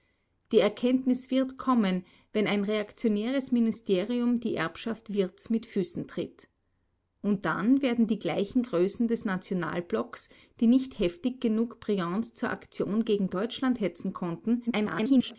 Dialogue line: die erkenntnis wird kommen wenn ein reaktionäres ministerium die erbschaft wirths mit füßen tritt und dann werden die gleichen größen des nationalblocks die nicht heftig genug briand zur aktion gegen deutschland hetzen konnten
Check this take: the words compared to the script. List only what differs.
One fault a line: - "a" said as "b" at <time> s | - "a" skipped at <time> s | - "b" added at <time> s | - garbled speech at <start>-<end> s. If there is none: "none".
- garbled speech at 14.7-15.4 s